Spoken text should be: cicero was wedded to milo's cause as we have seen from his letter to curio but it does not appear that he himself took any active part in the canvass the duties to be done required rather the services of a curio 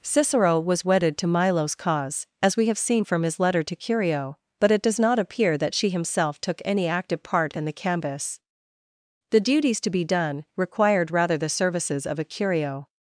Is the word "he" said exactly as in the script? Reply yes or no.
no